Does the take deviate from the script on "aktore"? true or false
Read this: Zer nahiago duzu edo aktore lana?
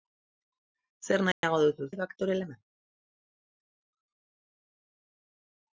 false